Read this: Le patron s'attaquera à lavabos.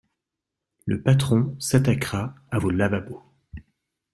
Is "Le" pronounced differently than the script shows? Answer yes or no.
no